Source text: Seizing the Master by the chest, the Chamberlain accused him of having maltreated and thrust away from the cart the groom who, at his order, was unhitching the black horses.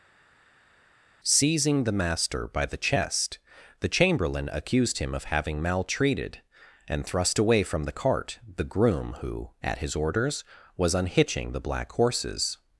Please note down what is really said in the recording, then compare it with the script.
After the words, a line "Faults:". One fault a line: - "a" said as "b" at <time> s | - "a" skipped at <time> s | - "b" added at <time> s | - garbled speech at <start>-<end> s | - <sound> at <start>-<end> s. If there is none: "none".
Seizing the Master by the chest, the Chamberlain accused him of having maltreated and thrust away from the cart the groom who, at his orders, was unhitching the black horses.
Faults:
- "order" said as "orders" at 9.9 s